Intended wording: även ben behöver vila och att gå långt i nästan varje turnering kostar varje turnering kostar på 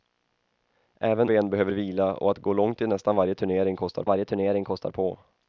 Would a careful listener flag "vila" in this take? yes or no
no